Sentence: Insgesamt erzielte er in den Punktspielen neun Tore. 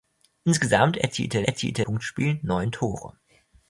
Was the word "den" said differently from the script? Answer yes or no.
yes